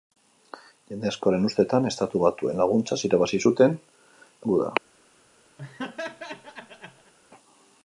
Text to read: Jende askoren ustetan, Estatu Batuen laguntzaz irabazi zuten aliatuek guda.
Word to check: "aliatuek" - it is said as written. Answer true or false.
false